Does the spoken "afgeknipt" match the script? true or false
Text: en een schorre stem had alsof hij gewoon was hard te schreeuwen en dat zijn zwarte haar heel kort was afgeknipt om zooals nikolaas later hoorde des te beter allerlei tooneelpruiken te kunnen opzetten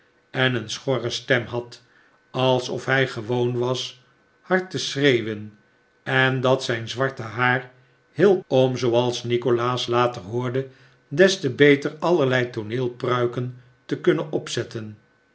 false